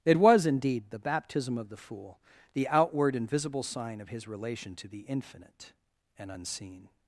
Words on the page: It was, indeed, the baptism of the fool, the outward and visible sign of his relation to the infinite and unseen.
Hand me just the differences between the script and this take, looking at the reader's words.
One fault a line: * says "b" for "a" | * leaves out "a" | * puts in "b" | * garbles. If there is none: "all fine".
all fine